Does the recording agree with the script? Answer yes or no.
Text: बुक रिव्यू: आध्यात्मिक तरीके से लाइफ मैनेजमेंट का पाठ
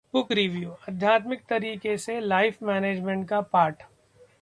yes